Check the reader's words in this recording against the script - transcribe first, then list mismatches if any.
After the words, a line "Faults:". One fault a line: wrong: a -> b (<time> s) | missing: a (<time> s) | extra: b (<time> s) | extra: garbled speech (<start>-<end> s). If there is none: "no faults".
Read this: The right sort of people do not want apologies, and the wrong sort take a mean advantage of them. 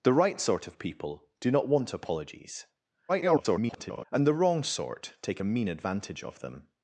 The right sort of people do not want apologies, [garbled] and the wrong sort take a mean advantage of them.
Faults:
extra: garbled speech (3.1-4.1 s)